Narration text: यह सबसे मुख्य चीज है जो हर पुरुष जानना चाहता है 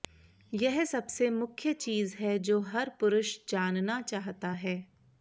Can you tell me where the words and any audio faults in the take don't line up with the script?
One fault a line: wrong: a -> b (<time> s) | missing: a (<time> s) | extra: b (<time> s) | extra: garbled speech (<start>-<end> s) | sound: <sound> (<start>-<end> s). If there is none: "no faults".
no faults